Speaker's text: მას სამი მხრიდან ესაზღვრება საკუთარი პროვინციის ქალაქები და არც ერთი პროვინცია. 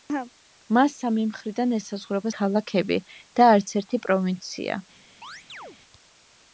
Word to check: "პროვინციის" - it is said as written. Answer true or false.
false